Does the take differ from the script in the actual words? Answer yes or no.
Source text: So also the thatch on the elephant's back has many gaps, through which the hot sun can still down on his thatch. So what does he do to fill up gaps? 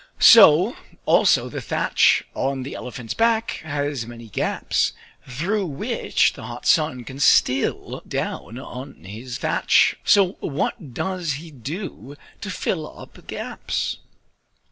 no